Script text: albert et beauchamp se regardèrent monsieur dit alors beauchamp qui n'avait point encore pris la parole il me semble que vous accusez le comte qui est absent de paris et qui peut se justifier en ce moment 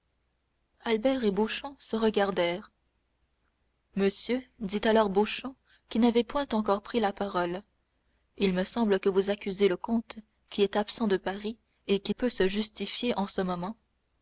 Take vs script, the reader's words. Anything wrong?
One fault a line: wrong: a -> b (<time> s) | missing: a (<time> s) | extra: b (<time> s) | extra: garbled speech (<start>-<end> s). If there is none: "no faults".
no faults